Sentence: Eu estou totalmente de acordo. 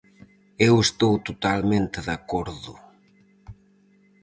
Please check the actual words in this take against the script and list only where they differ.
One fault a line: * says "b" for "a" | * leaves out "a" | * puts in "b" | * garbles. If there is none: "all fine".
all fine